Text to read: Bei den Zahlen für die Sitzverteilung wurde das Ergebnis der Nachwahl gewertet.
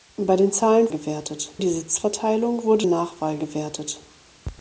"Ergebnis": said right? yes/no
no